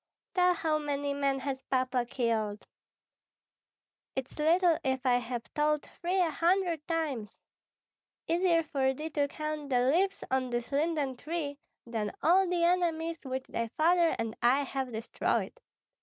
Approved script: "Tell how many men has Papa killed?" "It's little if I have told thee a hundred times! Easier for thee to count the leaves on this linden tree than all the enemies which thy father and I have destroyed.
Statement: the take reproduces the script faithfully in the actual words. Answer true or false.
true